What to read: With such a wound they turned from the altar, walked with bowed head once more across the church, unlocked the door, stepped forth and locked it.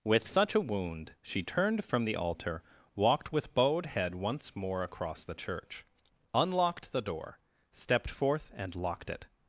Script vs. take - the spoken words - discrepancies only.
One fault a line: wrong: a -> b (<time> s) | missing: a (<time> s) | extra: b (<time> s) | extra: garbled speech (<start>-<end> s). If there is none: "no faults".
wrong: they -> she (1.2 s)